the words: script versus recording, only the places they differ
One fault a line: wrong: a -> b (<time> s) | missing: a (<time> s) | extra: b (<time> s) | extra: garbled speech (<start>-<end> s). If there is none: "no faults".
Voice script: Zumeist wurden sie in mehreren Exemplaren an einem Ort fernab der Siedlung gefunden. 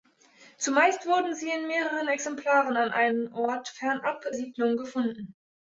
missing: der (4.2 s)